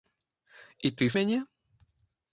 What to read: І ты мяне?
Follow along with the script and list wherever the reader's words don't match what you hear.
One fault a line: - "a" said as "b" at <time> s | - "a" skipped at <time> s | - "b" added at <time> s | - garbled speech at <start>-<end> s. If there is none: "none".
none